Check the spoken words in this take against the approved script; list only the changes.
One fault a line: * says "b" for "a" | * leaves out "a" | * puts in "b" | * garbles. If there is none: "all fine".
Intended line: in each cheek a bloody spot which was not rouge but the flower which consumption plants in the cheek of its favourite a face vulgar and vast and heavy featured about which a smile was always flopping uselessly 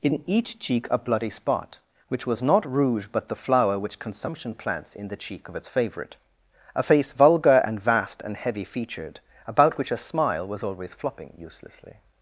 all fine